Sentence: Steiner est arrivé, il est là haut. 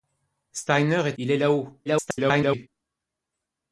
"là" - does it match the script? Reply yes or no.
yes